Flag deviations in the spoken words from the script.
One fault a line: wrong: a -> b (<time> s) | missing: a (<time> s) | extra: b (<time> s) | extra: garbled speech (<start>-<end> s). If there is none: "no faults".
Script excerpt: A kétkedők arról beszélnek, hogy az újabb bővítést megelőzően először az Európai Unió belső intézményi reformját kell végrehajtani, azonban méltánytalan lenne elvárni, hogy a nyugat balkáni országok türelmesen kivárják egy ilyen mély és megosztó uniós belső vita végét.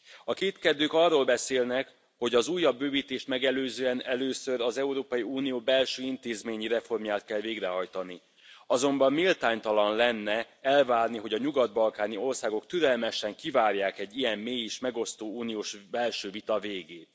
no faults